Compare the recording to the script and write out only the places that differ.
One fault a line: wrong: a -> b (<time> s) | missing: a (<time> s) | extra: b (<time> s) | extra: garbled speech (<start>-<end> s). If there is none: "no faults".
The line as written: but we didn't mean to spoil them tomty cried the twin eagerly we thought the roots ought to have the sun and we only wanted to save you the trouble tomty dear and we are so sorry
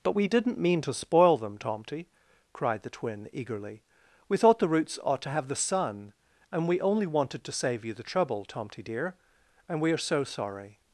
no faults